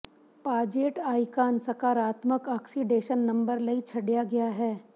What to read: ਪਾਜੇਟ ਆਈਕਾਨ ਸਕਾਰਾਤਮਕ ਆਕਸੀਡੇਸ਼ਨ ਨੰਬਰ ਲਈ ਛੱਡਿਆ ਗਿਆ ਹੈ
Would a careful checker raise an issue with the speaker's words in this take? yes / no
no